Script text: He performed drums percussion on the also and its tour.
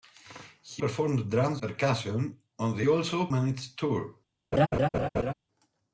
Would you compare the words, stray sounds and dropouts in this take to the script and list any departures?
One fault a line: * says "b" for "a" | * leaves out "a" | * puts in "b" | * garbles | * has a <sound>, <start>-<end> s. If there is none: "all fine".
* has a laugh, 4.5-5.3 s